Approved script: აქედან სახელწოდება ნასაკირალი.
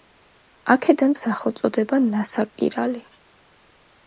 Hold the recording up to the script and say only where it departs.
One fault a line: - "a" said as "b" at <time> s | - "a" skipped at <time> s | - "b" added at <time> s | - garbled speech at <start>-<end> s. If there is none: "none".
none